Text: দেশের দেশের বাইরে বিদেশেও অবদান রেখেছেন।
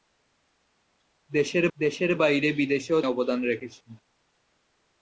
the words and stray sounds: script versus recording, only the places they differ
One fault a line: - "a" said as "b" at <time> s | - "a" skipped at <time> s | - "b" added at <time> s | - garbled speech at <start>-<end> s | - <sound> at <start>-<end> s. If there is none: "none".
none